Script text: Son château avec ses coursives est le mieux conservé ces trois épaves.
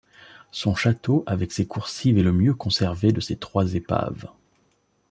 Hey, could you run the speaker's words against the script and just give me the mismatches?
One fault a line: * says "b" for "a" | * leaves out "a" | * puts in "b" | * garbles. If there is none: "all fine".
* puts in "de"